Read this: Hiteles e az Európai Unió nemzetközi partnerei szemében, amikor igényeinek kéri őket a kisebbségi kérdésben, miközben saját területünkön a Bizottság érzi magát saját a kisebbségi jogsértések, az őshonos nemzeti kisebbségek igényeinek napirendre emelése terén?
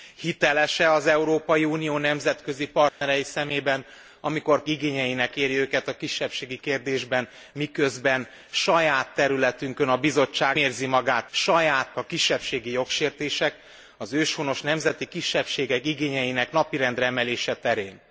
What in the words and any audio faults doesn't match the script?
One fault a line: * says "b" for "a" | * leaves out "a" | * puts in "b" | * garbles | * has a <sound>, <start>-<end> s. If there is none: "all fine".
* has a dropout, 2.9-3.0 s